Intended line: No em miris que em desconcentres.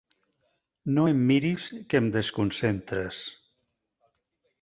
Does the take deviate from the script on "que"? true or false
false